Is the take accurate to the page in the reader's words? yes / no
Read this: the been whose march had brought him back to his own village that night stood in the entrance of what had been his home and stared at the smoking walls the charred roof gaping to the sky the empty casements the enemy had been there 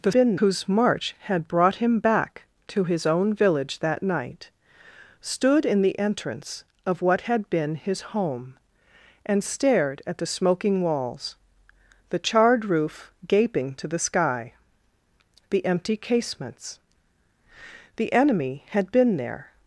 yes